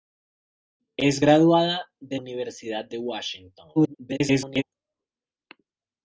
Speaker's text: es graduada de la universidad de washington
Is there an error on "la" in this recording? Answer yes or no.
yes